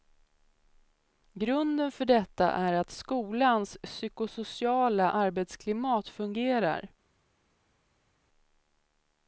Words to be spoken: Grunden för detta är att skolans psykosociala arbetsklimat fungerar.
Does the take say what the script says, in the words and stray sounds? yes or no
yes